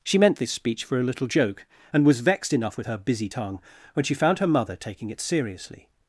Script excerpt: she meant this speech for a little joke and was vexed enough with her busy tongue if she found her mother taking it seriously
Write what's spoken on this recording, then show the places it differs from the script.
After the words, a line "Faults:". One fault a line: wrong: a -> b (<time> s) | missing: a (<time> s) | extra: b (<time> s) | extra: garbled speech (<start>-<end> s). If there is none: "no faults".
she meant this speech for a little joke and was vexed enough with her busy tongue when she found her mother taking it seriously
Faults:
wrong: if -> when (3.9 s)